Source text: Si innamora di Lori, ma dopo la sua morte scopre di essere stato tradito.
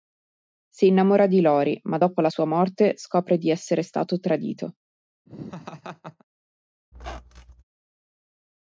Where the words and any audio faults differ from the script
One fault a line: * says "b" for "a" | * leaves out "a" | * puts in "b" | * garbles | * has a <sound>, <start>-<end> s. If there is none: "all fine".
* has a laugh, 5.3-6.2 s
* has a squeak, 6.9-7.6 s